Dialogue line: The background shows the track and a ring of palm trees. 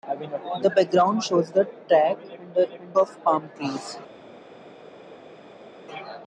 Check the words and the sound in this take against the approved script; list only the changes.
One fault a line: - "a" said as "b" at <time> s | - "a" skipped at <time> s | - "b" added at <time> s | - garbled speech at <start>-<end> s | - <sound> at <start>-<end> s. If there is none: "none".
- "ring" said as "and" at 2.7 s